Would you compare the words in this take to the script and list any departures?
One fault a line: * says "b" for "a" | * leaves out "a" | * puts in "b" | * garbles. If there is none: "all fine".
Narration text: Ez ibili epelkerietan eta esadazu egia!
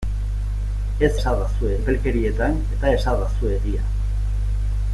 * says "esadazu" for "ibili"